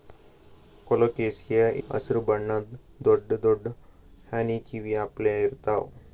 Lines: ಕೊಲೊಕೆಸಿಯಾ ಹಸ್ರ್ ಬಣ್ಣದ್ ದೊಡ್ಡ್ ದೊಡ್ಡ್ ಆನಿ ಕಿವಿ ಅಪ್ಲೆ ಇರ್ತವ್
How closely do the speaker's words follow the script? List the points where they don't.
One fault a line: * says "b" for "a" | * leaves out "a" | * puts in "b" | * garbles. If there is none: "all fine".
all fine